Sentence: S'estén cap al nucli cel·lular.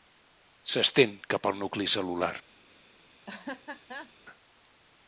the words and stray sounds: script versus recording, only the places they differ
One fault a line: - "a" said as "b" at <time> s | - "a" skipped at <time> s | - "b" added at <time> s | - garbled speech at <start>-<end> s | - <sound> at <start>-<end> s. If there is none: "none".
- laugh at 3.3-4.1 s